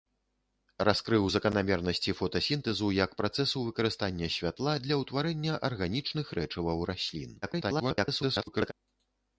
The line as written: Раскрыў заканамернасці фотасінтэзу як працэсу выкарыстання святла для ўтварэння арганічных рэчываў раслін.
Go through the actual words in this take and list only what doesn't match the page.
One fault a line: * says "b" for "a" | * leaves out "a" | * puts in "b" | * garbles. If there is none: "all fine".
* garbles